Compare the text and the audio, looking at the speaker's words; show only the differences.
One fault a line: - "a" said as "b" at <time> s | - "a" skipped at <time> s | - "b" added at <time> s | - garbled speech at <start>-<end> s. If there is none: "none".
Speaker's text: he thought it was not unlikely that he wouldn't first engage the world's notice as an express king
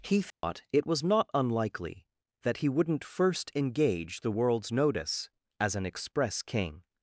none